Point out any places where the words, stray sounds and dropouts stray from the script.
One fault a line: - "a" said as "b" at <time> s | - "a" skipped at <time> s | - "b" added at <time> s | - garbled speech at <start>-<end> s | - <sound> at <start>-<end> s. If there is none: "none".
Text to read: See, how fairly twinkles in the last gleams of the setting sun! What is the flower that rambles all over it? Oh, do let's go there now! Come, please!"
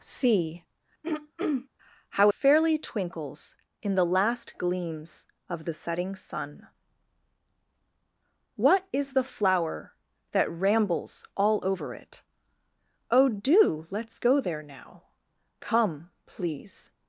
- throat clearing at 1.0-1.7 s